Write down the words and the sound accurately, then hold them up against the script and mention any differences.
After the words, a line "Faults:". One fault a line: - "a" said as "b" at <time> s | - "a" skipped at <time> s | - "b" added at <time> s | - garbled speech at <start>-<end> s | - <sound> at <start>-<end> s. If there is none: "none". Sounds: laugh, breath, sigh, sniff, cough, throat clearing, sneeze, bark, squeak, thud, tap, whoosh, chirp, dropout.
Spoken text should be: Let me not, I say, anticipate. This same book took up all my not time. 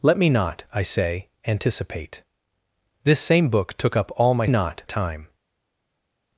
Let me not, I say, anticipate. This same book took up all my not time.
Faults:
none